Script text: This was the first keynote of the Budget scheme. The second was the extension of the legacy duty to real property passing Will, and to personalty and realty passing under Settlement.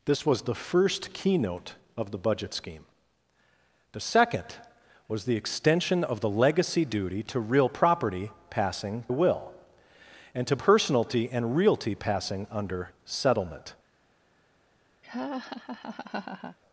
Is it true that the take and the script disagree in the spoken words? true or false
false